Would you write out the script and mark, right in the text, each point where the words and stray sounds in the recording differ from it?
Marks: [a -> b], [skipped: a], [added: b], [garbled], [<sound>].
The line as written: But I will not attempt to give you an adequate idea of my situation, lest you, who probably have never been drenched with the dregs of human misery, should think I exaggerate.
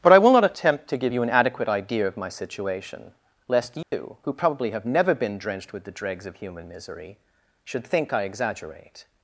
But I will not attempt to give you an adequate idea of my situation, lest you, [dropout] who probably have never been drenched with the dregs of human misery, should think I exaggerate.